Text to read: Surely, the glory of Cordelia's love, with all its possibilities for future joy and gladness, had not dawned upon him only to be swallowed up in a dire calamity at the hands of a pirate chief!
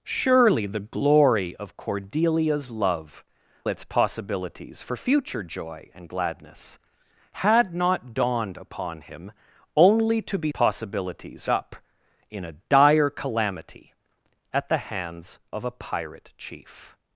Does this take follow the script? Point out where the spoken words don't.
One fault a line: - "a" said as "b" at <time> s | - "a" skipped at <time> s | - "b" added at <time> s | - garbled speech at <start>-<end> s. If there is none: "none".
- "with all" skipped at 3.2 s
- "swallowed" said as "possibilities" at 10.5 s